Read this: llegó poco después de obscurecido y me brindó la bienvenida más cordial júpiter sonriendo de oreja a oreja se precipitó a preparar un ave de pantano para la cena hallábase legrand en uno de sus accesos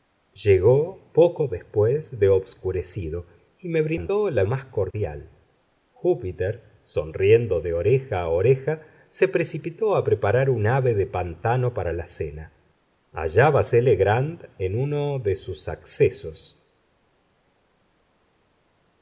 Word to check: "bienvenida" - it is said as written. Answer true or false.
false